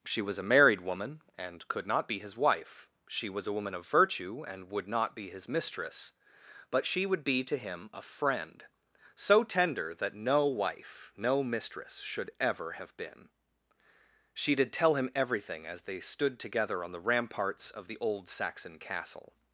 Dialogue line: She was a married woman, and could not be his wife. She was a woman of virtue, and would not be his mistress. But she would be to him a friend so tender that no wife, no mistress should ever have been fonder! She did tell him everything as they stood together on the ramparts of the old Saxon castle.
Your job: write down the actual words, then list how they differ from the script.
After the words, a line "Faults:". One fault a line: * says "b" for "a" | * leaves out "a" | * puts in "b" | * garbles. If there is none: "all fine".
She was a married woman, and could not be his wife. She was a woman of virtue, and would not be his mistress. But she would be to him a friend so tender that no wife, no mistress should ever have been! She did tell him everything as they stood together on the ramparts of the old Saxon castle.
Faults:
* leaves out "fonder"